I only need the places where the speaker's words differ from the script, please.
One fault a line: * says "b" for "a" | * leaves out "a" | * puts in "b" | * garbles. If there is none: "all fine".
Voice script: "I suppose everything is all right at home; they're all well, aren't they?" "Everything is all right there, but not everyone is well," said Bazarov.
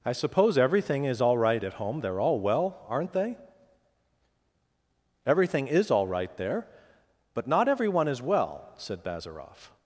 all fine